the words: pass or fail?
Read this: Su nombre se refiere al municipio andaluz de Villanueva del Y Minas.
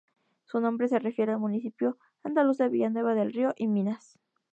fail